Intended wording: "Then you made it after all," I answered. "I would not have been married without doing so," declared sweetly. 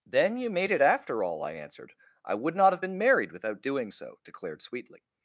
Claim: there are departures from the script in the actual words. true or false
false